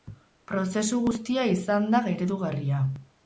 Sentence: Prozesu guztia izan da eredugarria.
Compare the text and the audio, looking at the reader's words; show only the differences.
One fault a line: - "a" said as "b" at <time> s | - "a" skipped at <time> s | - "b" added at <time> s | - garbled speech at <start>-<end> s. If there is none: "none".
none